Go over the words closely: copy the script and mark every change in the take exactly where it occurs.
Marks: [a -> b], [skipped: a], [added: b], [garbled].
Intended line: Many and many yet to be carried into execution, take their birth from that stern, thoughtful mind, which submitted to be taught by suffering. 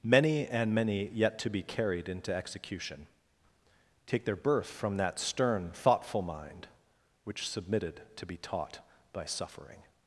Many and many yet to be carried into execution, take their birth from that stern, thoughtful mind, which submitted to be taught by suffering.